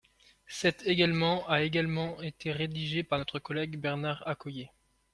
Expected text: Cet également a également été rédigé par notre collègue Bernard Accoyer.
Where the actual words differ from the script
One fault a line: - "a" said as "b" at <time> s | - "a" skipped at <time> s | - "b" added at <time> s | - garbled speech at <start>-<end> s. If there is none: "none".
none